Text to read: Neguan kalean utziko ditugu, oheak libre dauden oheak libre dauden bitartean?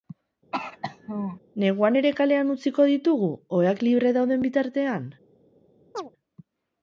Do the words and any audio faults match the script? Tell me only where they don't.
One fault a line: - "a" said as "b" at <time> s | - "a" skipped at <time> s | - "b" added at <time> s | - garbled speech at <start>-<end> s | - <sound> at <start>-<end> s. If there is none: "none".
- throat clearing at 0.5-1.4 s
- "ere" added at 2.0 s
- "oheak libre dauden" skipped at 4.5 s
- chirp at 5.9-6.1 s